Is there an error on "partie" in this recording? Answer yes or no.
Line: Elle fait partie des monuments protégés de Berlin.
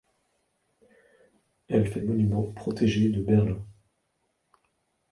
yes